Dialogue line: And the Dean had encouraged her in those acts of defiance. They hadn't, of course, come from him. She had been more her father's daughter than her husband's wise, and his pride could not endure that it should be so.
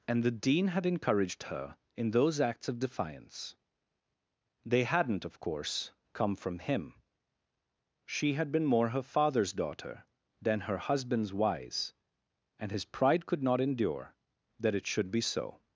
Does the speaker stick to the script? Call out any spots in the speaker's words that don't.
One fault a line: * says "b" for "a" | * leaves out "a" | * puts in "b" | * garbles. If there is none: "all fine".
all fine